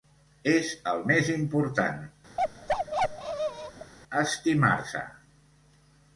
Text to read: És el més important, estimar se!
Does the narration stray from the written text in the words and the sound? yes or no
yes